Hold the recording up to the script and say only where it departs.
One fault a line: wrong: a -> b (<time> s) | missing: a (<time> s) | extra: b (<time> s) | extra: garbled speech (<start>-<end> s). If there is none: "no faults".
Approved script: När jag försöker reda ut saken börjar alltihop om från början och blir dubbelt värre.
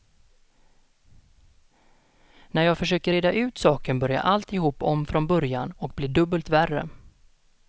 no faults